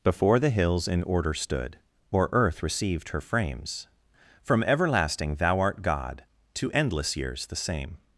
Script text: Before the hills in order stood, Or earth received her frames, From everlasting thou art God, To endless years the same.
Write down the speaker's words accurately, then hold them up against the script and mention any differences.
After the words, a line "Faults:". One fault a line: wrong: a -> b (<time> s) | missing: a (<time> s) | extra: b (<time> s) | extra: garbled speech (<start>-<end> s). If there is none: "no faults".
Before the hills in order stood, Or earth received her frames, From everlasting thou art God, To endless years the same.
Faults:
no faults